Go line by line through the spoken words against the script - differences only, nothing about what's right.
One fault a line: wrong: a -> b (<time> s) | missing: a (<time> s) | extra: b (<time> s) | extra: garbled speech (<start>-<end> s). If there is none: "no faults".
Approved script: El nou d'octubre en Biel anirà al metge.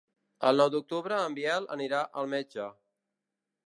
no faults